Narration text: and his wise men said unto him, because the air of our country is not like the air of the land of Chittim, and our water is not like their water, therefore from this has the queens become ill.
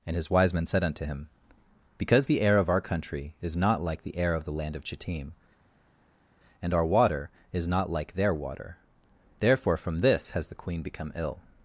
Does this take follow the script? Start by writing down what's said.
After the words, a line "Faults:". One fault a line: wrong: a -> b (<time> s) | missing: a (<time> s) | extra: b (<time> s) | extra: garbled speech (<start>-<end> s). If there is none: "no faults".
and his wise men said unto him, because the air of our country is not like the air of the land of Chittim, and our water is not like their water, therefore from this has the queen become ill.
Faults:
wrong: queens -> queen (10.6 s)